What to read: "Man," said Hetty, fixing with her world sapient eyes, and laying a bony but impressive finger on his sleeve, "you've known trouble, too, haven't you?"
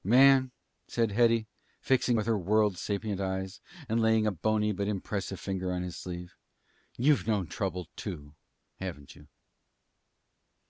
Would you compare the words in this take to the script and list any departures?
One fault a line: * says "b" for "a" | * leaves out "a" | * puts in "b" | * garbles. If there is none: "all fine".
all fine